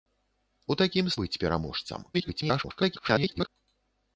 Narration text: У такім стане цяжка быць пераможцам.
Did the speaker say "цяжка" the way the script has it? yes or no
no